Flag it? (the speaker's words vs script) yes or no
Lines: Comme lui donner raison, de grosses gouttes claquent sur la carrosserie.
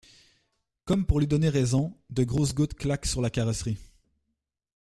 yes